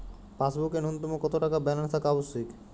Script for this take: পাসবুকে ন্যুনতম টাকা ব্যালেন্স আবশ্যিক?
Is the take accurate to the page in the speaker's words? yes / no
no